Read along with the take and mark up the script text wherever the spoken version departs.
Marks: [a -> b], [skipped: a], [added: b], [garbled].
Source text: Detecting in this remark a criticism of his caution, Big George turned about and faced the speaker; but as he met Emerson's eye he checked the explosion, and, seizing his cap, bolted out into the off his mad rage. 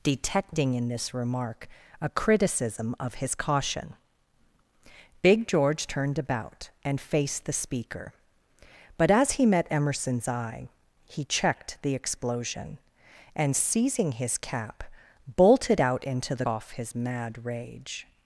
Detecting in this remark a criticism of his caution, Big George turned about and faced the speaker; but as he met Emerson's eye he checked the explosion, and, seizing his cap, bolted out into the off his mad rage.